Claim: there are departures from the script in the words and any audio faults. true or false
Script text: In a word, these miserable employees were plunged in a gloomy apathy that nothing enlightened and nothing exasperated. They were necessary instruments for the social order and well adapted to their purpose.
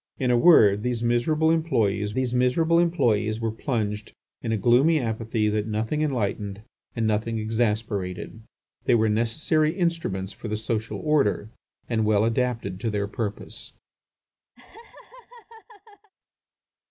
true